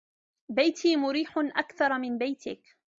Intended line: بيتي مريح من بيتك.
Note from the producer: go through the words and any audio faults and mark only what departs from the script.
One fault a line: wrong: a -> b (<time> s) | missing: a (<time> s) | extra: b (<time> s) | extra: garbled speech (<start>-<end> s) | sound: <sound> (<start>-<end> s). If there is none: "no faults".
extra: أكثر (1.4 s)